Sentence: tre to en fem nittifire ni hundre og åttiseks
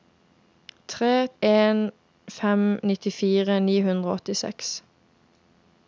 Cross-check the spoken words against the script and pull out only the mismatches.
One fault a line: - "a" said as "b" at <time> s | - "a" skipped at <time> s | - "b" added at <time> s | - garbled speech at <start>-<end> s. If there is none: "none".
- "to" skipped at 1.3 s